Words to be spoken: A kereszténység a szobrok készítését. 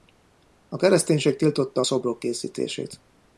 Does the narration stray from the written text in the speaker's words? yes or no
yes